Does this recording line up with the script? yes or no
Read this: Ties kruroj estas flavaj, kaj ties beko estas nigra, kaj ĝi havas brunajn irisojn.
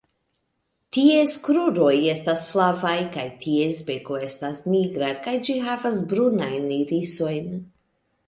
yes